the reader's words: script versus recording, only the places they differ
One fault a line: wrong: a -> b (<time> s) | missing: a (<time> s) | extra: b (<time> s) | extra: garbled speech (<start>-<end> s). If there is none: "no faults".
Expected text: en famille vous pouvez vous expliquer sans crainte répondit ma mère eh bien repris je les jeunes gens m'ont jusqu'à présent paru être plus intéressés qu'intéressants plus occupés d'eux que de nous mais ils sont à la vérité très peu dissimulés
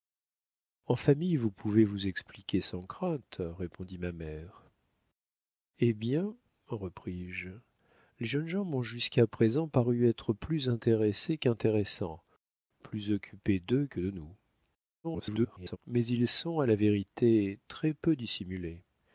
extra: garbled speech (15.0-15.8 s)